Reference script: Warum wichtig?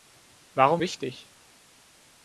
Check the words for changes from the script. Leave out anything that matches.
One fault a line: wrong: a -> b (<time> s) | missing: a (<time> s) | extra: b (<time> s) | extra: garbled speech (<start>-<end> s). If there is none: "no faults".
no faults